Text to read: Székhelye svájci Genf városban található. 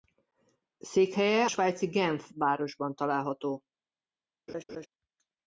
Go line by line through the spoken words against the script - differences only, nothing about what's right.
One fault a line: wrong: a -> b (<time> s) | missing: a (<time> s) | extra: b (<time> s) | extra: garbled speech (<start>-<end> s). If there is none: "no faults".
no faults